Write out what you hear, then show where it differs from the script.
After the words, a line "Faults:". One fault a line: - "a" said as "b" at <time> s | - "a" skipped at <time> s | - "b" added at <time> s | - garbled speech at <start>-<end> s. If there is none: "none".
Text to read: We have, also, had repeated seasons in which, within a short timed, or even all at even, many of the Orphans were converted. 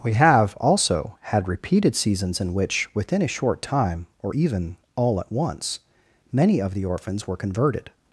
We have, also, had repeated seasons in which, within a short time, or even all at once, many of the Orphans were converted.
Faults:
- "timed" said as "time" at 3.6 s
- "even" said as "once" at 5.3 s